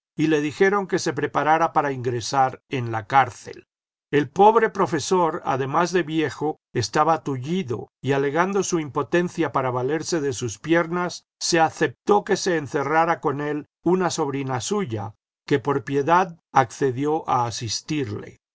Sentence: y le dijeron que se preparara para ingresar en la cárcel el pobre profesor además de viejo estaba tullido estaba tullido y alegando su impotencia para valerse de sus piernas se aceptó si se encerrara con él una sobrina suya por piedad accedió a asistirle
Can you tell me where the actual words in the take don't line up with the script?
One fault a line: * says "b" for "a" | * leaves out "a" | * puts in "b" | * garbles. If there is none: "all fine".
* leaves out "estaba tullido"
* says "que" for "si"
* puts in "que"